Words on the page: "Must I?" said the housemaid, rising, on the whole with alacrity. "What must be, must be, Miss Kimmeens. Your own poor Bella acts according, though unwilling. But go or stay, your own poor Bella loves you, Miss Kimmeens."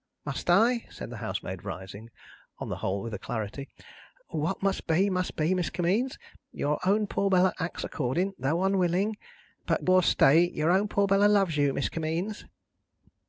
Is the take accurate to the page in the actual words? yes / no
no